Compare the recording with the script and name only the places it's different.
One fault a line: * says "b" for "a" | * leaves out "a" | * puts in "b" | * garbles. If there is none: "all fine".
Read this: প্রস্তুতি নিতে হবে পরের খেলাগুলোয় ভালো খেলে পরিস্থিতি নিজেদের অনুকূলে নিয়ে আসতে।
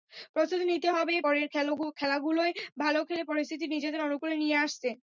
all fine